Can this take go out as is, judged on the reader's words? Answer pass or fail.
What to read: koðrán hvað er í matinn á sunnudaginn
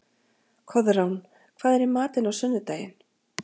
pass